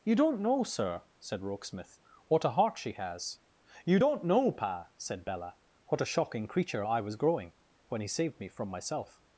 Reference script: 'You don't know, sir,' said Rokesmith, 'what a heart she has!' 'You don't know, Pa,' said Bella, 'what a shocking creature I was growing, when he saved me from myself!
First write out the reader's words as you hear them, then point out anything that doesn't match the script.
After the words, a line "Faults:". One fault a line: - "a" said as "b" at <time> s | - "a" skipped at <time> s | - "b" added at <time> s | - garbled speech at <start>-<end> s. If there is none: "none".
'You don't know, sir,' said Rokesmith, 'what a heart she has!' 'You don't know, Pa,' said Bella, 'what a shocking creature I was growing, when he saved me from myself!
Faults:
none